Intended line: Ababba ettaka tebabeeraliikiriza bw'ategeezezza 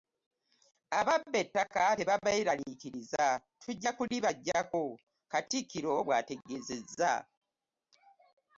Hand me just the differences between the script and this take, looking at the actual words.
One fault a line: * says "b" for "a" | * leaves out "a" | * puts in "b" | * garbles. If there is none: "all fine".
* puts in "tujja kulibaggyako katikkiro"